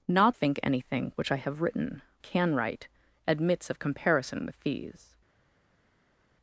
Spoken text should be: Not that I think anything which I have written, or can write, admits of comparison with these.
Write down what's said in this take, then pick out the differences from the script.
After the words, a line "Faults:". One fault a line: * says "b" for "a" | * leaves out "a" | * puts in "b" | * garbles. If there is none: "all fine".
Not think anything which I have written, can write, admits of comparison with these.
Faults:
* leaves out "that I"
* leaves out "or"